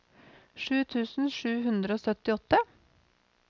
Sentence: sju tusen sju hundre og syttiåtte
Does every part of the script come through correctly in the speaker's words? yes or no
yes